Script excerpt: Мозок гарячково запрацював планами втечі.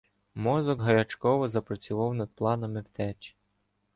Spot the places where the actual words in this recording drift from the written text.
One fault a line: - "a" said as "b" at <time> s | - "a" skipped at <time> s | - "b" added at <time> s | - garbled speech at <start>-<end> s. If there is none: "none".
- "над" added at 2.1 s